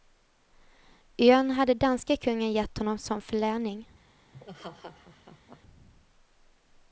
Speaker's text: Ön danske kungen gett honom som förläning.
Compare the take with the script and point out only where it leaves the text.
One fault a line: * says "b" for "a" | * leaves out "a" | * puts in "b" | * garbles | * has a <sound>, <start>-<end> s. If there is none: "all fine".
* puts in "hade"
* has a laugh, 4.3-5.6 s